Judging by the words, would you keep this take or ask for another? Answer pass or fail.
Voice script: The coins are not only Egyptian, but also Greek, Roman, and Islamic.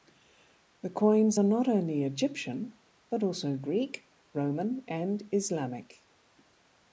pass